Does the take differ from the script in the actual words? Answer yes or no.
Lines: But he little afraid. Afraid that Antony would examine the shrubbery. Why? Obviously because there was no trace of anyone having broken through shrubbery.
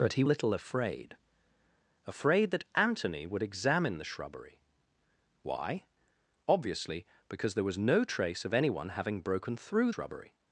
no